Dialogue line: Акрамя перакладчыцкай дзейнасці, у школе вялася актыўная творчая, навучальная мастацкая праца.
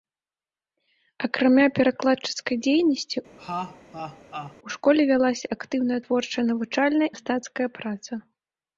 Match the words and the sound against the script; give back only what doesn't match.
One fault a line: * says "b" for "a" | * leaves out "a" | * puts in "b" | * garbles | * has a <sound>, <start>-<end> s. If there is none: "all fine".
* has a laugh, 3.4-4.6 s